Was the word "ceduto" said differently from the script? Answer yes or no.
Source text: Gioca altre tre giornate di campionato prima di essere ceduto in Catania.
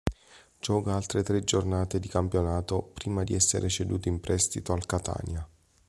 no